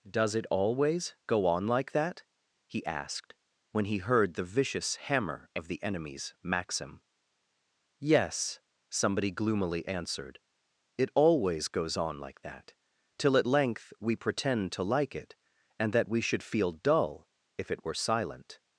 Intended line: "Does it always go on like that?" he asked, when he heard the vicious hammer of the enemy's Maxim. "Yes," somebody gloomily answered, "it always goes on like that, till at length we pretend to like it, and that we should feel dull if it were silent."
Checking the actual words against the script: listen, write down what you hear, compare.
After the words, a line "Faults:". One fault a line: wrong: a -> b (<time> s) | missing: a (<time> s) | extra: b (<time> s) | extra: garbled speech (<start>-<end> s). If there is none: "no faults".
"Does it always go on like that?" he asked, when he heard the vicious hammer of the enemy's Maxim. "Yes," somebody gloomily answered, "it always goes on like that, till at length we pretend to like it, and that we should feel dull if it were silent."
Faults:
no faults